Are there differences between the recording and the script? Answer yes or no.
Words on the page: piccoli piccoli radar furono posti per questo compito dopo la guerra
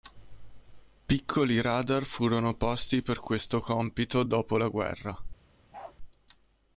yes